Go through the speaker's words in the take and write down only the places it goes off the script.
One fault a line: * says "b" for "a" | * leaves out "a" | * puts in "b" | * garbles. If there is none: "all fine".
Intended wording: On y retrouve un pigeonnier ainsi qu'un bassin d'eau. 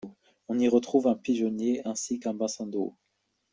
all fine